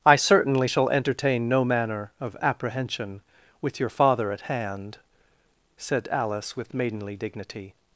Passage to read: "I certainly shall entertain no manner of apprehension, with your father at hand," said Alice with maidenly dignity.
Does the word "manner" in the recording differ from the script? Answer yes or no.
no